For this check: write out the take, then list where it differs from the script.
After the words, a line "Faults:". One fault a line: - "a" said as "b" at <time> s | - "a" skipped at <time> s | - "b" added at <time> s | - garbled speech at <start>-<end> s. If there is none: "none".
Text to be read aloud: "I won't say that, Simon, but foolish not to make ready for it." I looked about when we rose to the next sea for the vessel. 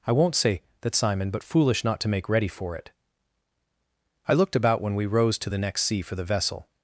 "I won't say that, Simon, but foolish not to make ready for it." I looked about when we rose to the next sea for the vessel.
Faults:
none